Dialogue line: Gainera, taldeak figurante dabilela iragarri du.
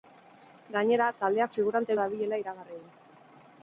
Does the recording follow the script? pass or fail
pass